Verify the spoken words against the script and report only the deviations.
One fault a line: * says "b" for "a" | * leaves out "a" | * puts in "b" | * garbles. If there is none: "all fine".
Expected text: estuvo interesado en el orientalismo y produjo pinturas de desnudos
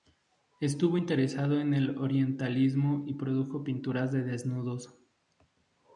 all fine